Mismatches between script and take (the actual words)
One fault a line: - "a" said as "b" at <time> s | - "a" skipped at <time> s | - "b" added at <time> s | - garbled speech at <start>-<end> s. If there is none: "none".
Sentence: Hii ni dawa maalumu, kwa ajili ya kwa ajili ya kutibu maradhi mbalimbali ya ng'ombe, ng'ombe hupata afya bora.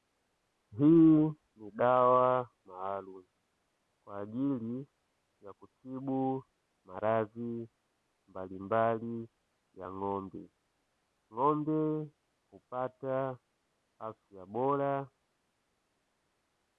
- "kwa ajili ya" skipped at 5.5 s